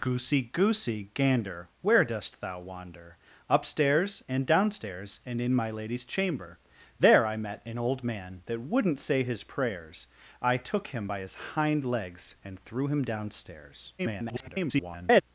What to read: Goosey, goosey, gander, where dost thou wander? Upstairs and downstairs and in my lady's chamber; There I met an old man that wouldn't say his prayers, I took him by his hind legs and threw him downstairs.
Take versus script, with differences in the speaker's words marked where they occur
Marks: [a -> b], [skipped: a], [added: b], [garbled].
Goosey, goosey, gander, where dost thou wander? Upstairs and downstairs and in my lady's chamber; There I met an old man that wouldn't say his prayers, I took him by his hind legs and threw him downstairs. [garbled]